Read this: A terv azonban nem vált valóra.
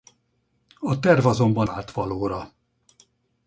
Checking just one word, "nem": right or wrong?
wrong